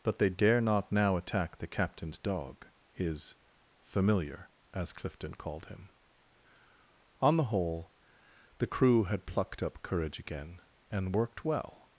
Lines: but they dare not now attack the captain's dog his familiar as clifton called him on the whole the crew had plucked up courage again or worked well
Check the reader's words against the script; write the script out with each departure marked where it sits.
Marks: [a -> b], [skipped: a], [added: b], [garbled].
but they dare not now attack the captain's dog his familiar as clifton called him on the whole the crew had plucked up courage again [or -> and] worked well